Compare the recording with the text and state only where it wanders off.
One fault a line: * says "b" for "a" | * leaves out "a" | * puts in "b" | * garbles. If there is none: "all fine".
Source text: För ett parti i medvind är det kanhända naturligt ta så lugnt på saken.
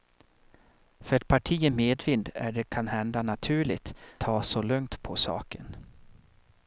all fine